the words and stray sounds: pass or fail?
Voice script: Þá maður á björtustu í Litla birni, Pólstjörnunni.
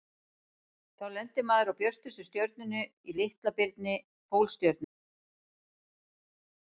fail